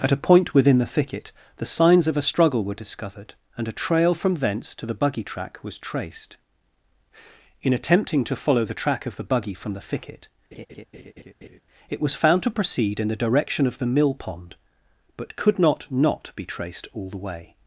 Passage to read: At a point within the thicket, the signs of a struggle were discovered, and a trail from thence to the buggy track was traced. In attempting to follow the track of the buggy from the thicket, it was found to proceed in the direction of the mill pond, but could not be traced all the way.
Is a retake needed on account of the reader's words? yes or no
yes